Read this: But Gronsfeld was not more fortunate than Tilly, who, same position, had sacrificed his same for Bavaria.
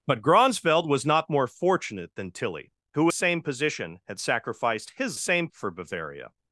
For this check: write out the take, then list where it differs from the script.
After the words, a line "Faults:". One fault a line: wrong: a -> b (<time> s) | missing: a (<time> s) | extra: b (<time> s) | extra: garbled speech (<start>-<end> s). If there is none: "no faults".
But Gronsfeld was not more fortunate than Tilly, who, same position, had sacrificed his same for Bavaria.
Faults:
no faults